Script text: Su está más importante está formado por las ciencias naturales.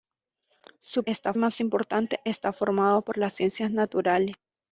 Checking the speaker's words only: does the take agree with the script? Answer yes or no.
yes